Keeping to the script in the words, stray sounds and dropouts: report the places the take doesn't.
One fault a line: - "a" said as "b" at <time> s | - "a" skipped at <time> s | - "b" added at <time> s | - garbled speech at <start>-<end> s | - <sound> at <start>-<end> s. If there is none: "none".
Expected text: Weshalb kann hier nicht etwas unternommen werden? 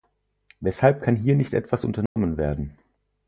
- dropout at 2.1-2.2 s